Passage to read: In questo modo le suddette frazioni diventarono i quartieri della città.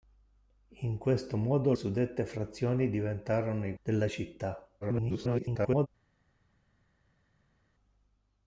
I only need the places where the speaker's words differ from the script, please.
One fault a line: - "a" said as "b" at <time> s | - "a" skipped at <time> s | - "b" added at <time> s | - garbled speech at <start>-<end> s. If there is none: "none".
- "le" skipped at 1.7 s
- "quartieri" skipped at 3.7 s
- garbled speech at 4.8-5.9 s